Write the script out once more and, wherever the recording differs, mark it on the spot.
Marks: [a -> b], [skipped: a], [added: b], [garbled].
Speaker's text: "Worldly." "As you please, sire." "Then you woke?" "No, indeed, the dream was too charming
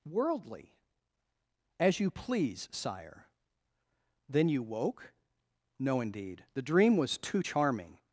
"Worldly." "As you please, sire." "Then you woke?" "No, indeed, the dream was too charming